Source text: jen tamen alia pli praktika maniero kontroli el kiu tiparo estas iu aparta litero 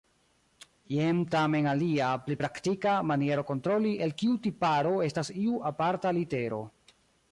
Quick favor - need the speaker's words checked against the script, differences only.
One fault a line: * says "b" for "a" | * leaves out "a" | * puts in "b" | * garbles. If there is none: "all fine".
all fine